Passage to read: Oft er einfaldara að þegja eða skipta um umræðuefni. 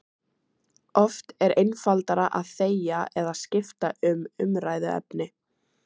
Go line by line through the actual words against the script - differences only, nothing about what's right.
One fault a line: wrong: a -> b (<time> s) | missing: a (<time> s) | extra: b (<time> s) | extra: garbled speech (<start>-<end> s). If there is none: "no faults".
no faults